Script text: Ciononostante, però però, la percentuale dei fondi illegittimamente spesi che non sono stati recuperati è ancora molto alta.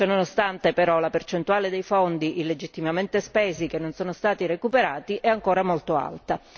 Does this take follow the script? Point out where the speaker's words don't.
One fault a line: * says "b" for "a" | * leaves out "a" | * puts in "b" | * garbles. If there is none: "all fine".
* leaves out "però"